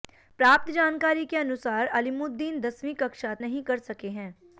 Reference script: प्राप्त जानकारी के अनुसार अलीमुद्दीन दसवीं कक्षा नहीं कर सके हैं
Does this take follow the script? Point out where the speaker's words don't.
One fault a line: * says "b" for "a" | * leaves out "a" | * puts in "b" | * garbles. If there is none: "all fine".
all fine